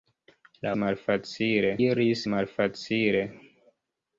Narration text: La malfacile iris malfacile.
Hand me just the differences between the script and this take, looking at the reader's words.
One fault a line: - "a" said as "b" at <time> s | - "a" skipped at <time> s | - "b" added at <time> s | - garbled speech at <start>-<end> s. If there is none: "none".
none